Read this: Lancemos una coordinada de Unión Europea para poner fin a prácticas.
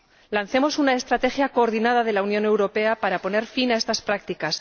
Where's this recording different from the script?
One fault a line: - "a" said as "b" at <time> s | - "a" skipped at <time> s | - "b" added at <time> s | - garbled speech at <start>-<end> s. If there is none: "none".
- "estrategia" added at 0.9 s
- "la" added at 2.1 s
- "estas" added at 3.8 s